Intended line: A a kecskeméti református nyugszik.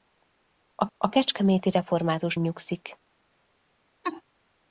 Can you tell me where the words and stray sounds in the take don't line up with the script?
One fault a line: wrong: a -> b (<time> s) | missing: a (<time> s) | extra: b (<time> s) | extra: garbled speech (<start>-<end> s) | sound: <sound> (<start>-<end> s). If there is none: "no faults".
sound: laugh (4.0-4.2 s)